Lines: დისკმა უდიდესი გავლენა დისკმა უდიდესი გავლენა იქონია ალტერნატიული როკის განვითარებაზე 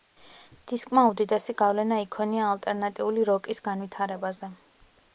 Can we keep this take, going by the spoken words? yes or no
no